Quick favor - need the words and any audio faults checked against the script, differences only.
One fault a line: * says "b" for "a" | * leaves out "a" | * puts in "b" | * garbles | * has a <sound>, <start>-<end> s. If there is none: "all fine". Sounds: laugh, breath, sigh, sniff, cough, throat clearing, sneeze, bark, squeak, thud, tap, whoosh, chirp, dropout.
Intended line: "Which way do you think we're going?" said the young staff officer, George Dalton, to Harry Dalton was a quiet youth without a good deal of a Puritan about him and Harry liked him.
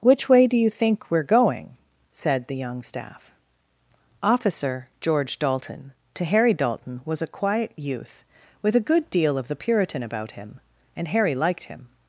* says "with" for "without"
* says "the" for "a"